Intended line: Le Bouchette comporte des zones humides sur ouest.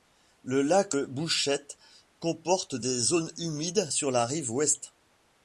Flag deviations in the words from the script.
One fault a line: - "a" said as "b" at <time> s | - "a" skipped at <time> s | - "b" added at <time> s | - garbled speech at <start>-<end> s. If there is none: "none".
- "lac" added at 0.6 s
- "la rive" added at 4.1 s